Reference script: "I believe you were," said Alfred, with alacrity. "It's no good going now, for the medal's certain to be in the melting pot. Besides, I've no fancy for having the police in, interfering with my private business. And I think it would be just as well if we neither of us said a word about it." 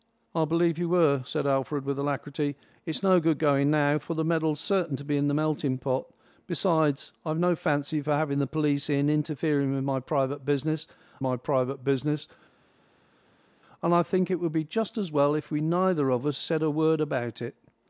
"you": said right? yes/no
yes